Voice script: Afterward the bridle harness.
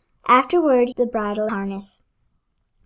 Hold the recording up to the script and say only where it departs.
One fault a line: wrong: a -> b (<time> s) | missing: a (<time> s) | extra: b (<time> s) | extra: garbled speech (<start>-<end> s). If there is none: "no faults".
no faults